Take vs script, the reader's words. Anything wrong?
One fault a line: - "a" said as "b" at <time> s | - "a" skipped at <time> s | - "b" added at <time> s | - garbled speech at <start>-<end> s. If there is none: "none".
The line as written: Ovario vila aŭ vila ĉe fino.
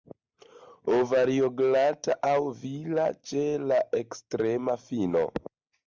- "vila" said as "glata" at 1.6 s
- "la ekstrema" added at 3.7 s